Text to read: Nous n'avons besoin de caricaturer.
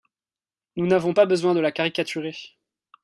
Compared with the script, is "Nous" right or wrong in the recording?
right